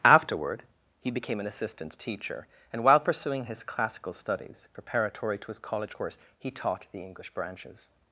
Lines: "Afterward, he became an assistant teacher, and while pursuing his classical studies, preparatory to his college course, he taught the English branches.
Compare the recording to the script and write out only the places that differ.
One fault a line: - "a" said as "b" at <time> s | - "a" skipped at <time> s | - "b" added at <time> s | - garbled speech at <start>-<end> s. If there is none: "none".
none